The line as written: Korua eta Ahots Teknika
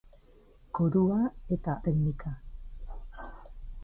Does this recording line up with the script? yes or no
no